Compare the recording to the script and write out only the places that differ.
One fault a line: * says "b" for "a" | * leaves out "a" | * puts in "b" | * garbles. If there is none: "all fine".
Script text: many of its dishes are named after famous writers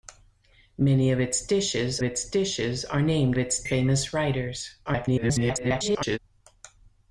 * puts in "its dishes"
* says "its" for "after"
* garbles